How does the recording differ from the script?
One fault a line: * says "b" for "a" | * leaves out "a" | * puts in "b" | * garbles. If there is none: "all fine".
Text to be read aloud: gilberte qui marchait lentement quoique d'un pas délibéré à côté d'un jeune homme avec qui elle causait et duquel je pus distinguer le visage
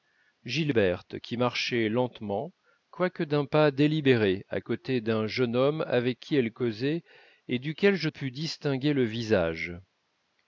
all fine